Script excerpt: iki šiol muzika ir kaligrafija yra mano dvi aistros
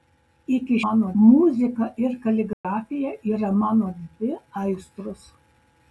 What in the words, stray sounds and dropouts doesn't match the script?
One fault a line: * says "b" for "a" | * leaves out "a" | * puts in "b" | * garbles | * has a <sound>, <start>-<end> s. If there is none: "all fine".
* says "mano" for "šiol"
* has a dropout, 2.5-2.6 s